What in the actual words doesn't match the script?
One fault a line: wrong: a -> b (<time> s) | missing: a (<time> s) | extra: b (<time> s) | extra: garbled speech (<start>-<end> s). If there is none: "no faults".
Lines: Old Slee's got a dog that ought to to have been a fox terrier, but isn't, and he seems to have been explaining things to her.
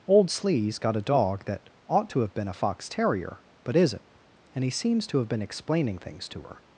missing: to (2.2 s)